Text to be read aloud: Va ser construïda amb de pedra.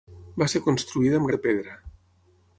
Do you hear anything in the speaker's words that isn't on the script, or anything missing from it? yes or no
no